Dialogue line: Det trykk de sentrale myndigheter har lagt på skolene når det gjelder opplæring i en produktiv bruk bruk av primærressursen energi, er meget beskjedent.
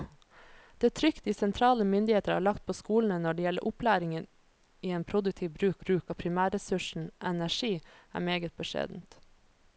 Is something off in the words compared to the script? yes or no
no